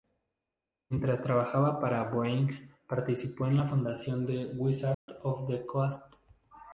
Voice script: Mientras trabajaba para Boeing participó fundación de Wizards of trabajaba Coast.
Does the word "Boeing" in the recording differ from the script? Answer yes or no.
no